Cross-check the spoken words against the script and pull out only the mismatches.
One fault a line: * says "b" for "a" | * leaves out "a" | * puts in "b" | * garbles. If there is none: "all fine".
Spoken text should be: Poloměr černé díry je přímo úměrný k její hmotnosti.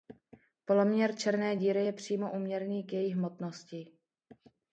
all fine